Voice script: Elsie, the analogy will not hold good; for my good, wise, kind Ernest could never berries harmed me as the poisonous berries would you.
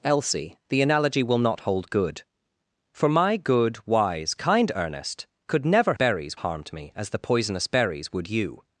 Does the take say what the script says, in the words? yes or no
yes